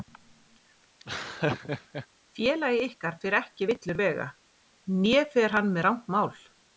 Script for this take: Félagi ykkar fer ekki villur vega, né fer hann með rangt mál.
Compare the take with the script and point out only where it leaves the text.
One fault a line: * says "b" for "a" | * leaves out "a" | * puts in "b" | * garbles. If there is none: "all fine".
all fine